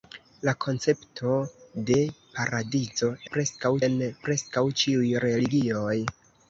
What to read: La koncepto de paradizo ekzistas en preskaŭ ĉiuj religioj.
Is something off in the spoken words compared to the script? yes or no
yes